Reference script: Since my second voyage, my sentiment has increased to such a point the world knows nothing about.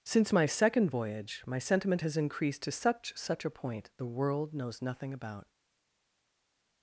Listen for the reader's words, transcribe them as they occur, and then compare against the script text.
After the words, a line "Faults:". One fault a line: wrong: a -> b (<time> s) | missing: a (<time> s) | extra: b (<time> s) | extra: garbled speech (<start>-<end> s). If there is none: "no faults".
Since my second voyage, my sentiment has increased to such such a point the world knows nothing about.
Faults:
extra: such (3.2 s)